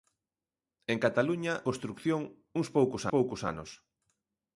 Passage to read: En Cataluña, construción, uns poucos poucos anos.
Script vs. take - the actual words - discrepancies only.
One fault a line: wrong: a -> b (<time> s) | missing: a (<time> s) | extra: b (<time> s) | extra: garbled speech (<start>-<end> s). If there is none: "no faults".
no faults